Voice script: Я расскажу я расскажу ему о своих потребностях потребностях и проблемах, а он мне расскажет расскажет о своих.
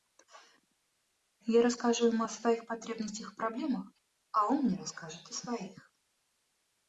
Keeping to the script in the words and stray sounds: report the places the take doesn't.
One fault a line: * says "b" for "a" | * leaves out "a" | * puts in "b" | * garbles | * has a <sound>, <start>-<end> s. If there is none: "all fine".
* leaves out "я расскажу"
* leaves out "потребностях"
* leaves out "расскажет"